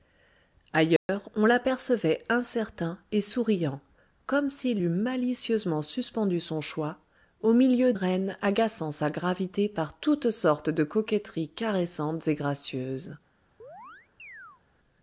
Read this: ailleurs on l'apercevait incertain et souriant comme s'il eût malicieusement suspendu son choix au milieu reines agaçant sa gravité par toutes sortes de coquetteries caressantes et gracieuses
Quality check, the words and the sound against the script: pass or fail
fail